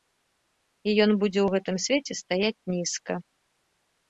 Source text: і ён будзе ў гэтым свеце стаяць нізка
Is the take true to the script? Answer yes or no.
yes